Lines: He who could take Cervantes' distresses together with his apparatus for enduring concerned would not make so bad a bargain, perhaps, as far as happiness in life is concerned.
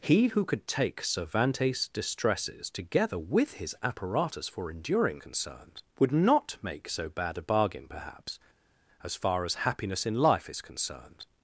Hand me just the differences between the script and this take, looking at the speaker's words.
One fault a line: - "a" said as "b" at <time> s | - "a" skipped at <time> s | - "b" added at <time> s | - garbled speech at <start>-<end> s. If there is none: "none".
none